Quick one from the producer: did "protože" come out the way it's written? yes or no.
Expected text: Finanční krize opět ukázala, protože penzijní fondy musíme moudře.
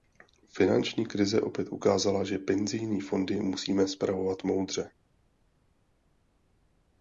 no